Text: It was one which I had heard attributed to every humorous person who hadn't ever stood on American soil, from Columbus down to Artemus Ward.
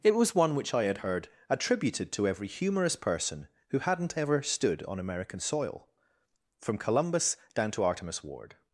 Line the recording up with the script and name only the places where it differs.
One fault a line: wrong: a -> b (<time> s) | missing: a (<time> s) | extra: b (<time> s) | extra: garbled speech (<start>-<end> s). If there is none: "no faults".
no faults